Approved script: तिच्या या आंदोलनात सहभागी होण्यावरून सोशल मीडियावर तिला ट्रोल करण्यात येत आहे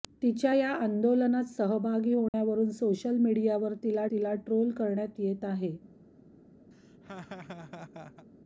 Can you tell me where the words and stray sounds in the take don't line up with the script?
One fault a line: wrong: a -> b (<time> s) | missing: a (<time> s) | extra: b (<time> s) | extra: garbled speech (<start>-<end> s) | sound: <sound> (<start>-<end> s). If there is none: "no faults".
sound: dropout (2.3-2.3 s)
extra: तिला (4.1 s)
sound: laugh (6.7-8.3 s)